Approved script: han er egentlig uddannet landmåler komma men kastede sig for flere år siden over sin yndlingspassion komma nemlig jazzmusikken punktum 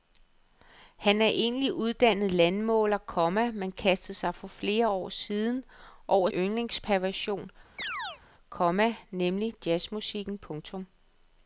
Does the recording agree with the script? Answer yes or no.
no